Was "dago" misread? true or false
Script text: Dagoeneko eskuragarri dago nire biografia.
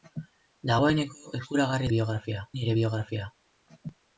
true